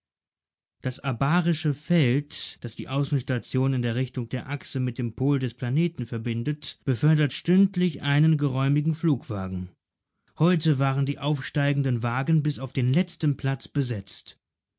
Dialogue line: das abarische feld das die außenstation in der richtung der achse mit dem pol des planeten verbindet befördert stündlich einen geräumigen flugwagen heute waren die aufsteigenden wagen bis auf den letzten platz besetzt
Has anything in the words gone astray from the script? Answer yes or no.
no